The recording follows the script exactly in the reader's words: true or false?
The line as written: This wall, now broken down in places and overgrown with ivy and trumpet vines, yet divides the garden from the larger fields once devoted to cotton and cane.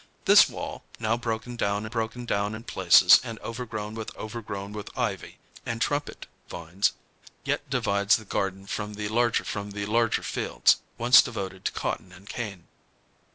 false